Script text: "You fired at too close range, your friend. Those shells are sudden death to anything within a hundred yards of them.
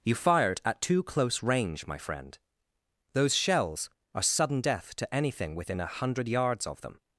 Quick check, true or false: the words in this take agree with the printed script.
false